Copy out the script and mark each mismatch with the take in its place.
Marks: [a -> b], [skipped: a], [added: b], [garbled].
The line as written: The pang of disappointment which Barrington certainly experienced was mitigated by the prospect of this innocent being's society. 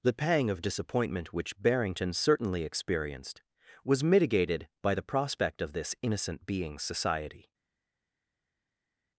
The pang of disappointment which Barrington certainly experienced was mitigated by the prospect of this innocent being's society.